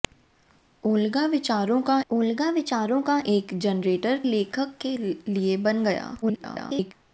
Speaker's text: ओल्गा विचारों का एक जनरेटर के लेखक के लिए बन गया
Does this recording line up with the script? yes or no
no